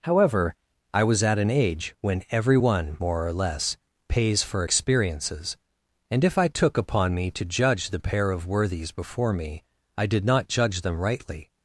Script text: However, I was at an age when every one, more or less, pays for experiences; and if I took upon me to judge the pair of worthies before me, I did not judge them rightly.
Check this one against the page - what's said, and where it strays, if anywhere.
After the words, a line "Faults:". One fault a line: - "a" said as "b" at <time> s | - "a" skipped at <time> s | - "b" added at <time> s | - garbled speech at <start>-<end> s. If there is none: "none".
However, I was at an age when every one, more or less, pays for experiences; and if I took upon me to judge the pair of worthies before me, I did not judge them rightly.
Faults:
none